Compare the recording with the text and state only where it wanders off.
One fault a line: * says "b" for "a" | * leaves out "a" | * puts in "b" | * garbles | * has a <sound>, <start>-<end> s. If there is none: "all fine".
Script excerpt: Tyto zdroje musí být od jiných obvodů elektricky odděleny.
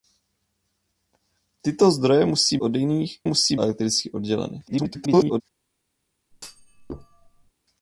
* leaves out "být"
* says "musí" for "obvodů"
* garbles
* has a thud, 6.3-7.5 s